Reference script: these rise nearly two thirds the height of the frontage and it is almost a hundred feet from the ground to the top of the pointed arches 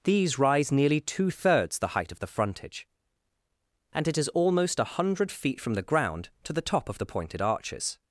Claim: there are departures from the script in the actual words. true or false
false